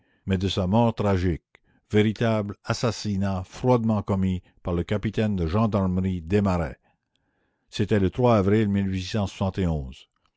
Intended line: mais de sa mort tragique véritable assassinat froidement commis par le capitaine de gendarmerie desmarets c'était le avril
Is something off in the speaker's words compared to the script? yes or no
no